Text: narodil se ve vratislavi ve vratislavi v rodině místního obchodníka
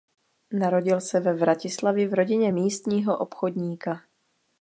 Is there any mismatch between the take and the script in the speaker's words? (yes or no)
yes